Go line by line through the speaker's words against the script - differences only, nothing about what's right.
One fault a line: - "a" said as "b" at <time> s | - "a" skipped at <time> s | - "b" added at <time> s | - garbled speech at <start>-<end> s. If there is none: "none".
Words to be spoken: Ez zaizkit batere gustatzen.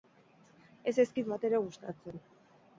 none